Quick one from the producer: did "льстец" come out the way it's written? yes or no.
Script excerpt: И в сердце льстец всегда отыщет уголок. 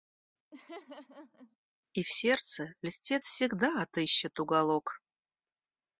yes